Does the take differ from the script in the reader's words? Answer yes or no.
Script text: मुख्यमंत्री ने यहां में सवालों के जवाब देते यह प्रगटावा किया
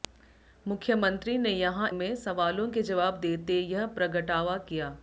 no